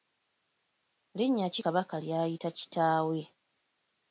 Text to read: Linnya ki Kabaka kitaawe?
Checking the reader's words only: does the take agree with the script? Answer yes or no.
no